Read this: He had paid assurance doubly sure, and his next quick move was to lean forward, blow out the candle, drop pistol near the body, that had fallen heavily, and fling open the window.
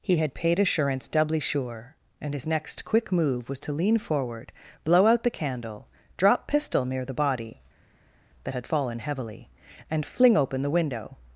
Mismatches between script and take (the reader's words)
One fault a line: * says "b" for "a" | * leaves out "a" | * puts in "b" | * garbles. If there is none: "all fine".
all fine